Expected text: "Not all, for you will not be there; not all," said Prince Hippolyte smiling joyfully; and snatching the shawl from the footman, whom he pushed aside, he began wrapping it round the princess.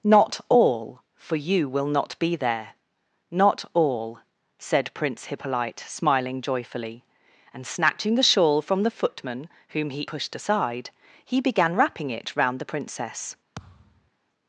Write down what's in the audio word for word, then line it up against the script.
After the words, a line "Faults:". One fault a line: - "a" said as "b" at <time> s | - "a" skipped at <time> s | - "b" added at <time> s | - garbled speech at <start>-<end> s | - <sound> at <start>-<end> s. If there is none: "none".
"Not all, for you will not be there; not all," said Prince Hippolyte smiling joyfully; and snatching the shawl from the footman, whom he pushed aside, he began wrapping it round the princess.
Faults:
- thud at 13.6-14.1 s